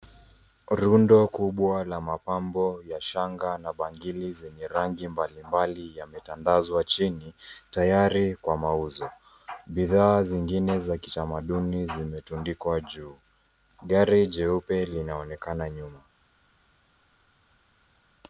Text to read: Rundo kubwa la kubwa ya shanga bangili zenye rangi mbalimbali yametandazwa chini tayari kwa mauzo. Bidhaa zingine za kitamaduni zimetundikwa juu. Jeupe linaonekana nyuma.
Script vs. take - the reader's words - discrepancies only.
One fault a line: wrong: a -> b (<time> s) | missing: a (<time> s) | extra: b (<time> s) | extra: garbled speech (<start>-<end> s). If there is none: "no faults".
wrong: kubwa -> mapambo (2.0 s)
extra: na (3.6 s)
extra: Gari (13.8 s)